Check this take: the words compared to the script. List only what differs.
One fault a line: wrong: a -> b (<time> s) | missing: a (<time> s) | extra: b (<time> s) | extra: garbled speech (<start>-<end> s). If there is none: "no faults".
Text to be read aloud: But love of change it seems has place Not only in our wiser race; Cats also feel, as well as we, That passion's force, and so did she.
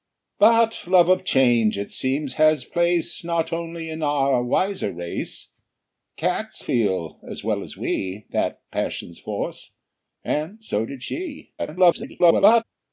missing: also (6.6 s)
extra: garbled speech (11.6-12.6 s)